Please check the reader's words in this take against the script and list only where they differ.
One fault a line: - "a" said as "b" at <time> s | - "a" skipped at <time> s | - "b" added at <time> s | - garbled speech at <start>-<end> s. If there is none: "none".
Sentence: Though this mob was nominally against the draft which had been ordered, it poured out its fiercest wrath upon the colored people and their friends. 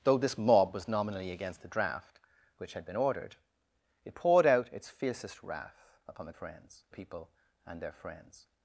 - "colored" said as "friends" at 6.3 s